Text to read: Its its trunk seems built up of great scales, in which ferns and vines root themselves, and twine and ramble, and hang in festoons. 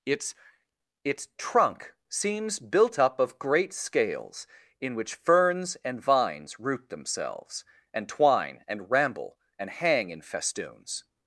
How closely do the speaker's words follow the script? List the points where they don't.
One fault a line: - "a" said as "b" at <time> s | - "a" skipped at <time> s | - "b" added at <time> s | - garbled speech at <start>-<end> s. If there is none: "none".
none